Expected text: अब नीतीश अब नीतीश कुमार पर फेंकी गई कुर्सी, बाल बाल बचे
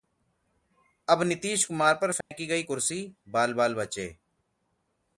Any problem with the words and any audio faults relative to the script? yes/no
yes